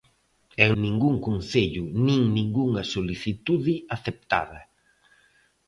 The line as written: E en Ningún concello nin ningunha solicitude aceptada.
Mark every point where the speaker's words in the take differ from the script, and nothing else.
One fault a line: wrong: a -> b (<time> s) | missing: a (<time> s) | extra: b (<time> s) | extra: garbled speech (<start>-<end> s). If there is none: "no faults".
no faults